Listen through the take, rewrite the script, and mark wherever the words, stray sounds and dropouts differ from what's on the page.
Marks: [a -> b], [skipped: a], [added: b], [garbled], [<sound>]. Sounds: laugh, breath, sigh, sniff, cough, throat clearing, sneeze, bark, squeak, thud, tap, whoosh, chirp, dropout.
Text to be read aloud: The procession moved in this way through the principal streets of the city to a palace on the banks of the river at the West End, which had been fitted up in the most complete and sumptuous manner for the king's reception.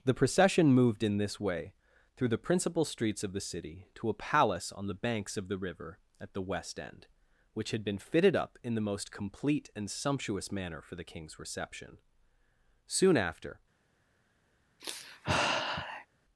The procession moved in this way through the principal streets of the city to a palace on the banks of the river at the West End, which had been fitted up in the most complete and sumptuous manner for the king's reception. [added: Soon after] [sigh]